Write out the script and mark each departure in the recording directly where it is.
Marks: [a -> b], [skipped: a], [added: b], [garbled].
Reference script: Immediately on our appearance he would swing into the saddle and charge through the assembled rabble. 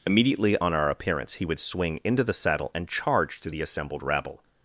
Immediately on our appearance he would swing into the saddle and charge through the assembled rabble.